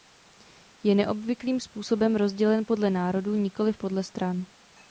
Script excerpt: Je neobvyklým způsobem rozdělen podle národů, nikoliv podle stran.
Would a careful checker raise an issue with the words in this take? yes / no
no